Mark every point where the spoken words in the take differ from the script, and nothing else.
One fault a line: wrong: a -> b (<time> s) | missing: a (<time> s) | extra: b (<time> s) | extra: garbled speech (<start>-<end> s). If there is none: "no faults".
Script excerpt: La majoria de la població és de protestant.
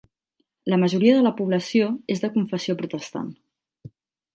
extra: confessió (2.4 s)